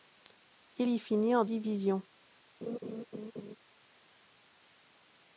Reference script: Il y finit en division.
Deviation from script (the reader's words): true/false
false